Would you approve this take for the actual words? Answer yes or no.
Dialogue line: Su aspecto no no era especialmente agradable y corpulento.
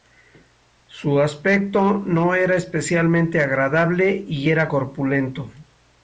no